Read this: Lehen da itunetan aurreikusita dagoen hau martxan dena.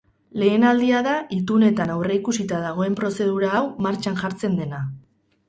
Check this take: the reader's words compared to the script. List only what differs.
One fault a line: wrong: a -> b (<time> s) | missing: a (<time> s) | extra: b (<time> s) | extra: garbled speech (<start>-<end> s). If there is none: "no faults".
extra: aldia (0.7 s)
extra: prozedura (3.0 s)
extra: jartzen (4.2 s)